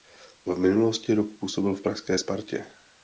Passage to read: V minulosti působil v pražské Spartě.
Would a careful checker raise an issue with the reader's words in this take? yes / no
yes